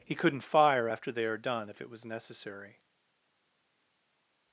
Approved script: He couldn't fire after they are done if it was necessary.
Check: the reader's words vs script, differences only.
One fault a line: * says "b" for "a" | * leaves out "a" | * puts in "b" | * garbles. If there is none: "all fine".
all fine